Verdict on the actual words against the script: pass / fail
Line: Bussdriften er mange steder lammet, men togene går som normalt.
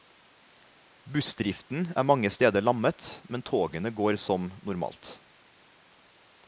pass